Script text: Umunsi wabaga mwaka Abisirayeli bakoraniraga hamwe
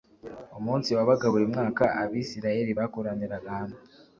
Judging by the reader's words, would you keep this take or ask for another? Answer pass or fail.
fail